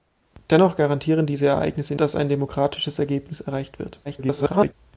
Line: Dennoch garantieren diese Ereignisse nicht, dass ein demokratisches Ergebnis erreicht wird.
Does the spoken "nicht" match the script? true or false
false